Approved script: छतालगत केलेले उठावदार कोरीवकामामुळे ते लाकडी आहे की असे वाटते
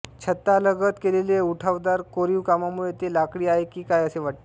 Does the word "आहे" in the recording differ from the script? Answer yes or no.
no